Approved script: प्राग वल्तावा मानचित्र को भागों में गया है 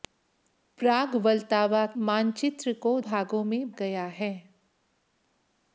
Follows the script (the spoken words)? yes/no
yes